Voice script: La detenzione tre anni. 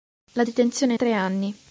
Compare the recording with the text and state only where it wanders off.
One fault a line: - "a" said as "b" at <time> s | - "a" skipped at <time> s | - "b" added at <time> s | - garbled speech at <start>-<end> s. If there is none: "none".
none